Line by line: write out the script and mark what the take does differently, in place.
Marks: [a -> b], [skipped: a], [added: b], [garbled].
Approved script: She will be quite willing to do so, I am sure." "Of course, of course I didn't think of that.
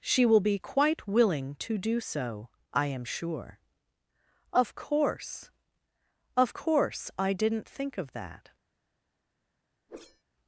She will be quite willing to do so, I am sure." "Of course, of course I didn't think of that.